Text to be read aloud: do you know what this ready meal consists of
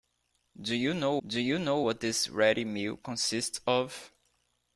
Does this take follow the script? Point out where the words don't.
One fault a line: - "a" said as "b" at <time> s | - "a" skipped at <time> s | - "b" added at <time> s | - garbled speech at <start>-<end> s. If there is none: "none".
- "do you know" added at 1.2 s